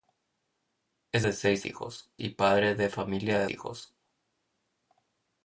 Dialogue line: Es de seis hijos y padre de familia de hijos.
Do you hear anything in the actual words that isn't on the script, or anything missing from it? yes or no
no